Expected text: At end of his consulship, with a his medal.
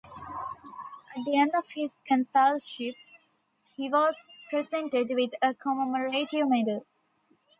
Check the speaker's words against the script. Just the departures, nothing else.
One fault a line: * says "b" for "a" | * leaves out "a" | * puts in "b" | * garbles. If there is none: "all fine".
* puts in "the"
* puts in "he was presented"
* says "commemorative" for "his"